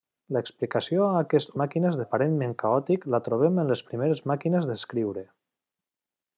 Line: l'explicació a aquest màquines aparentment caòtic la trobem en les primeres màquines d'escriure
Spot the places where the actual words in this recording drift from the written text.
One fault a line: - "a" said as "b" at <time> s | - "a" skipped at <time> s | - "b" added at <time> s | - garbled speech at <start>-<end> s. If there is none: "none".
none